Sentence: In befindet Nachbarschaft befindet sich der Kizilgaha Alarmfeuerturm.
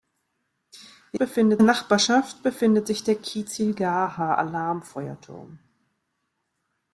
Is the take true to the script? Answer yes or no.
yes